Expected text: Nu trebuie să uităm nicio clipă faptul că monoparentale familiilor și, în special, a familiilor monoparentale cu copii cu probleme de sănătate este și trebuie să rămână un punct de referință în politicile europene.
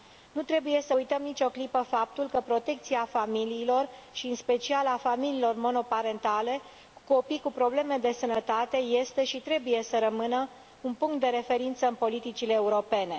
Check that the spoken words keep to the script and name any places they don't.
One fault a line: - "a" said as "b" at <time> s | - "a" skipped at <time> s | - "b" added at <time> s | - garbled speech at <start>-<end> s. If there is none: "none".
- "monoparentale" said as "protecția" at 2.4 s